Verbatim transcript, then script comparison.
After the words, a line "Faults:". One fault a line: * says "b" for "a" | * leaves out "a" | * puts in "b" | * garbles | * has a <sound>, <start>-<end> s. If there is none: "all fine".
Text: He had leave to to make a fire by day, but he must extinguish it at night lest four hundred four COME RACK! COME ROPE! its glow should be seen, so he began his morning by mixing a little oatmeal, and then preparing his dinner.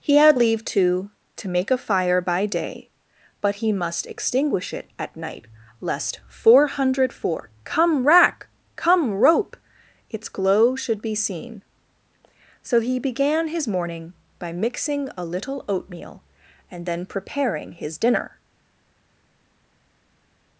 He had leave to to make a fire by day, but he must extinguish it at night lest four hundred four COME RACK! COME ROPE! its glow should be seen, so he began his morning by mixing a little oatmeal, and then preparing his dinner.
Faults:
all fine